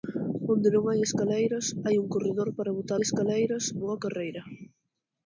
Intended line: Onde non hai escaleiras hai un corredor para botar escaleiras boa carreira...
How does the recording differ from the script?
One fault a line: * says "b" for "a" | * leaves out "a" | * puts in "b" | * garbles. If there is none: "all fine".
all fine